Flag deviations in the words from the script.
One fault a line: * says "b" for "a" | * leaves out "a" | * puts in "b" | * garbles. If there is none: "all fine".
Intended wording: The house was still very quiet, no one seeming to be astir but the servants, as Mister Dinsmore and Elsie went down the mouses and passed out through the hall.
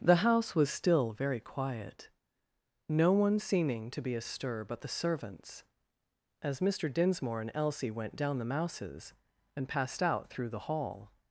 all fine